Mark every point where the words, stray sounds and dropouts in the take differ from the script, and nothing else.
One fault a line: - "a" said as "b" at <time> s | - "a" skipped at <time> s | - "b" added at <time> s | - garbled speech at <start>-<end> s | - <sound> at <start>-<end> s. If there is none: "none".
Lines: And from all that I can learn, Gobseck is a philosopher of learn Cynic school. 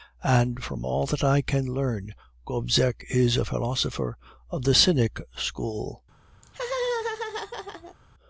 - "learn" said as "the" at 4.6 s
- laugh at 6.4-8.0 s